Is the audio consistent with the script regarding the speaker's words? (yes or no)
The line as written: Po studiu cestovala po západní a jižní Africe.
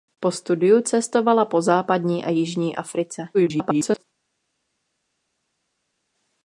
no